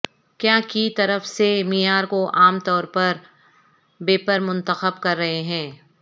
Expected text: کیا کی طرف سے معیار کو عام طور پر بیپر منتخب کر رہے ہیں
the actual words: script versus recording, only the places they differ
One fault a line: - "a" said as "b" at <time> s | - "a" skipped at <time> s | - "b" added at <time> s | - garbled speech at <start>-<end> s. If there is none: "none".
none